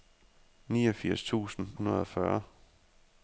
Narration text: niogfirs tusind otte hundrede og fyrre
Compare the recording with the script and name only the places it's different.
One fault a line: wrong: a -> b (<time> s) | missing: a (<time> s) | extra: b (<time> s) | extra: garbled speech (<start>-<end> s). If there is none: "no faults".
missing: otte (1.7 s)